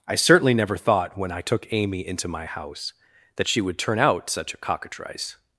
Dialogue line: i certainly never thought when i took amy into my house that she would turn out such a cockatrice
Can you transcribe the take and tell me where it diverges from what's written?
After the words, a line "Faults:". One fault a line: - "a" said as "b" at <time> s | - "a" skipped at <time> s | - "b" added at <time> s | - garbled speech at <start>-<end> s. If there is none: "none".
i certainly never thought when i took amy into my house that she would turn out such a cockatrice
Faults:
none